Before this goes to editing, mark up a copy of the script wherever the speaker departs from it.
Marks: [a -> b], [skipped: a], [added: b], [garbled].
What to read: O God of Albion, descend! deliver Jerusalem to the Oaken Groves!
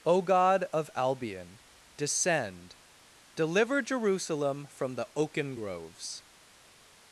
O God of Albion, descend! deliver Jerusalem [to -> from] the Oaken Groves!